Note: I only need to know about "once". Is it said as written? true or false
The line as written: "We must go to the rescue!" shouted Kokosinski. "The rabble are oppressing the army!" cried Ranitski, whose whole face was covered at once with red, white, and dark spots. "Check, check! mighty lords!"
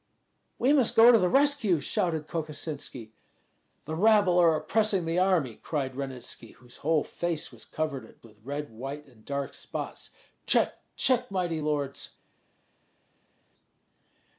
false